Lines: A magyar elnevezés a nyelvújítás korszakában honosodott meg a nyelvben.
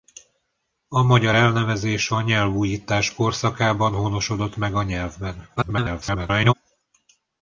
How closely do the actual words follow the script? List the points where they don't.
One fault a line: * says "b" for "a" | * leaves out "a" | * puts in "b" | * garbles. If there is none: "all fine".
* garbles